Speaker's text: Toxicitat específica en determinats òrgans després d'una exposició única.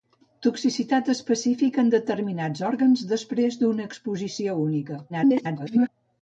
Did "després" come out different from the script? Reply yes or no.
no